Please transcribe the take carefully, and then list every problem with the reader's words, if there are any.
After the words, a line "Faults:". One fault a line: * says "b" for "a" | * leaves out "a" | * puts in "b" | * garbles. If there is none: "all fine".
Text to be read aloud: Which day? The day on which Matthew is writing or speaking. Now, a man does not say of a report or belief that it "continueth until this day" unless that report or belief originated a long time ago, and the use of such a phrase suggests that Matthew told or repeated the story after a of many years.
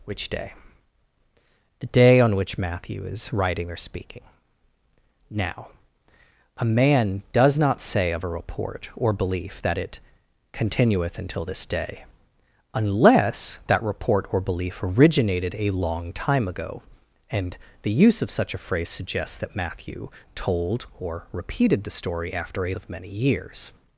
Which day? The day on which Matthew is writing or speaking. Now, a man does not say of a report or belief that it "continueth until this day" unless that report or belief originated a long time ago, and the use of such a phrase suggests that Matthew told or repeated the story after a of many years.
Faults:
all fine